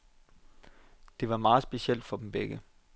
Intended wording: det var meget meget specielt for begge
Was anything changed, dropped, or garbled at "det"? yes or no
no